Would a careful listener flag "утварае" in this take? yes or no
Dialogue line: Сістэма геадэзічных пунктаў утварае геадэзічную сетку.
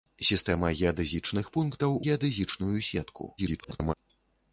yes